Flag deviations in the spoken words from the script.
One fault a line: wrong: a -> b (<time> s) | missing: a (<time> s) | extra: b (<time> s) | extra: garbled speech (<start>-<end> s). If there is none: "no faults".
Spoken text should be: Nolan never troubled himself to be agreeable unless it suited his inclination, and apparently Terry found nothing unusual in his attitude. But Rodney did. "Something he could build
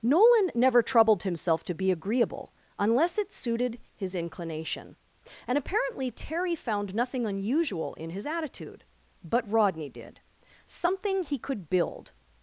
no faults